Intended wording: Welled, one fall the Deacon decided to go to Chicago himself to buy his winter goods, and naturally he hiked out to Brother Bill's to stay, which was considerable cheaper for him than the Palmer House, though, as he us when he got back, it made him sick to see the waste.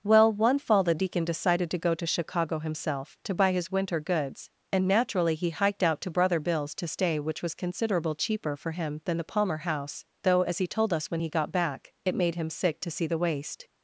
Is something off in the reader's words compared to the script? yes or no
yes